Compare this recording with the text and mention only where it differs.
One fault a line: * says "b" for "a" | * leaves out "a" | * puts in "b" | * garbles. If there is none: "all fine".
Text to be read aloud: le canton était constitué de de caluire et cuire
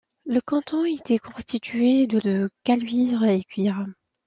all fine